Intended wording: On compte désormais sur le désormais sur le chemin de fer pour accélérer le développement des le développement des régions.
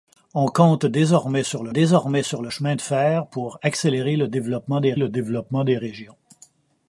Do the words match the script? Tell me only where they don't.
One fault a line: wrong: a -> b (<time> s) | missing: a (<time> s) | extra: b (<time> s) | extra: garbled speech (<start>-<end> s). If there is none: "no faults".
no faults